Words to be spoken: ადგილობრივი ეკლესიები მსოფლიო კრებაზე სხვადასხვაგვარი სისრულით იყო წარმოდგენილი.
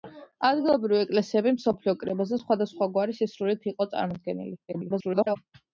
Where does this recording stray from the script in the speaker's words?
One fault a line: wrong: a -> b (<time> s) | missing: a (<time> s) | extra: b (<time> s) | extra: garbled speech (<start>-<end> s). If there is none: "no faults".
extra: garbled speech (4.7-5.4 s)